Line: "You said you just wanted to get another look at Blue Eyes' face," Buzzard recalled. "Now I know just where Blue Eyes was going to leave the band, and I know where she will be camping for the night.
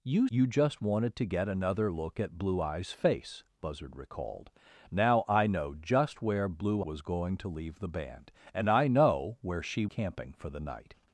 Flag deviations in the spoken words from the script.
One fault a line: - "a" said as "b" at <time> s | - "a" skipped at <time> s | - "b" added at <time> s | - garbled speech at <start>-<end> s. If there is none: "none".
- "said" skipped at 0.3 s
- "Eyes" skipped at 6.8 s
- "will be" skipped at 9.9 s